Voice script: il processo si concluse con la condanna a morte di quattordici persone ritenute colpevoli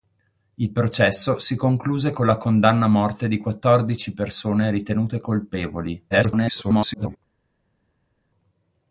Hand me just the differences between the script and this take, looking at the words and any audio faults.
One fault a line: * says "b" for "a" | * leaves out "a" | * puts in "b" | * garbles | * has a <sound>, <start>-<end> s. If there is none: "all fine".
* garbles